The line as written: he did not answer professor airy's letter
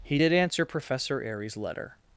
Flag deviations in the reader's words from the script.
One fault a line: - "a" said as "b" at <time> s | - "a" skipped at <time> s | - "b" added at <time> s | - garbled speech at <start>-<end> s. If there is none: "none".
- "not" skipped at 0.3 s